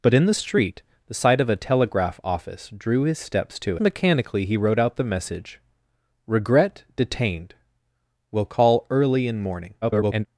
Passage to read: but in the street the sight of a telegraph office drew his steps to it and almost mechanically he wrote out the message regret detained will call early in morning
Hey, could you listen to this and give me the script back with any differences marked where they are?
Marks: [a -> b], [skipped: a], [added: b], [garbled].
but in the street the sight of a telegraph office drew his steps to [skipped: it and almost] mechanically he wrote out the message regret detained will call early in morning [garbled]